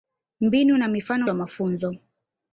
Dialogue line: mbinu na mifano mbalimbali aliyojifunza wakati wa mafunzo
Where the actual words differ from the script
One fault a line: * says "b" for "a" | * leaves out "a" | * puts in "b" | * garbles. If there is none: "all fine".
* leaves out "mbalimbali aliyojifunza wakati"